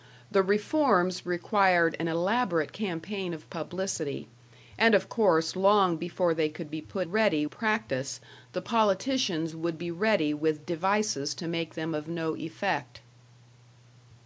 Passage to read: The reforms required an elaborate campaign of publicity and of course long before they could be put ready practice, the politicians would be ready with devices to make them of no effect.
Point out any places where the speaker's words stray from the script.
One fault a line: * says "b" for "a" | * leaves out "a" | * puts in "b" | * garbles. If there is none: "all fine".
all fine